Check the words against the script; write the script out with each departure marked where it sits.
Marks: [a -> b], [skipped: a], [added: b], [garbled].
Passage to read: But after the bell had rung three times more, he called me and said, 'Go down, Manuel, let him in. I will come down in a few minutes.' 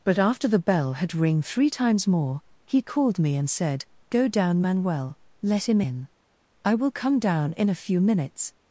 But after the bell had [rung -> ring] three times more, he called me and said, 'Go down, Manuel, let him in. I will come down in a few minutes.'